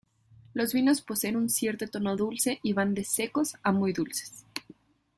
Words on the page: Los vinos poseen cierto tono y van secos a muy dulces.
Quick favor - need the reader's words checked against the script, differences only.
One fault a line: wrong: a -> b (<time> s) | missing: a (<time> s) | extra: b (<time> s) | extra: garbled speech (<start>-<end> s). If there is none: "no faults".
extra: un (1.3 s)
extra: dulce (2.1 s)
extra: de (2.9 s)